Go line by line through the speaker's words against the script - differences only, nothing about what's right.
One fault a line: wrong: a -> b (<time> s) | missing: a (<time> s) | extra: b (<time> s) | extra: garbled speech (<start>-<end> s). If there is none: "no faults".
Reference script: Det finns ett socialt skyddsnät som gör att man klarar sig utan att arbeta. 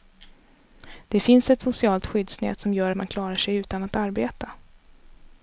no faults